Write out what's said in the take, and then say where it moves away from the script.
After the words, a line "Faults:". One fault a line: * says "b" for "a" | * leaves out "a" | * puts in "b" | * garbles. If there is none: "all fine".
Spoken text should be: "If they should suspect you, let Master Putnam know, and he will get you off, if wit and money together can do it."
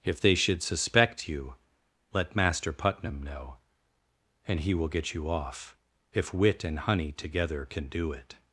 "If they should suspect you, let Master Putnam know, and he will get you off, if wit and honey together can do it."
Faults:
* says "honey" for "money"